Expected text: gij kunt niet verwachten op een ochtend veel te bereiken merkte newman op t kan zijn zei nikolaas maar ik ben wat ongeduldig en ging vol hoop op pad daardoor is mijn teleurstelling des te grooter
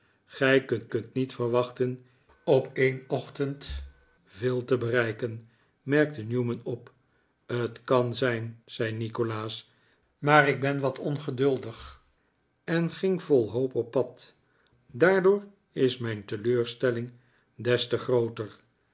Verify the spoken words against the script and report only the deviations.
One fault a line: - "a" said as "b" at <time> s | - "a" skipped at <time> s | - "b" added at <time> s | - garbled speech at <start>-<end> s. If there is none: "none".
- "kunt" added at 0.9 s